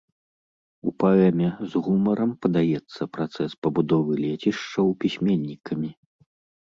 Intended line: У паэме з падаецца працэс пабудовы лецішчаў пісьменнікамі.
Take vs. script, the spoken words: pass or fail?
fail